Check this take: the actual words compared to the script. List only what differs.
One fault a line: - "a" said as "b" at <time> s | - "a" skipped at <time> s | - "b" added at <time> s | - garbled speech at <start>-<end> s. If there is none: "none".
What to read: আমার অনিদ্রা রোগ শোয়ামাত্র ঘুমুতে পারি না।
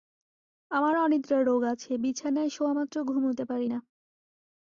- "আছে বিছানায়" added at 1.6 s